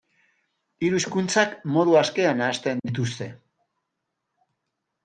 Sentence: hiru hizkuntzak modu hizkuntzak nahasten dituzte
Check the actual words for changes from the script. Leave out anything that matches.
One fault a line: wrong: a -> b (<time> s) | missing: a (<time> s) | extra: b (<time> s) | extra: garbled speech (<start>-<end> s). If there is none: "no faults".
wrong: hizkuntzak -> askean (2.0 s)